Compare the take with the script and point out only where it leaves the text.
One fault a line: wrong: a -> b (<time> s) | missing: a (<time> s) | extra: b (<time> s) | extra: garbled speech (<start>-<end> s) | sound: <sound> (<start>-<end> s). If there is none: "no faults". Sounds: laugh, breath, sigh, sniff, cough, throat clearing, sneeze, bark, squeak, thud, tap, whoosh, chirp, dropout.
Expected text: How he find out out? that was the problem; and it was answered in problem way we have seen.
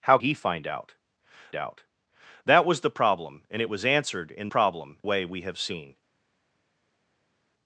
no faults